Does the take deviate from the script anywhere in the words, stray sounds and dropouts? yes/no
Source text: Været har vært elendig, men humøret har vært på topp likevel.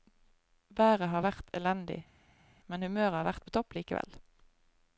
no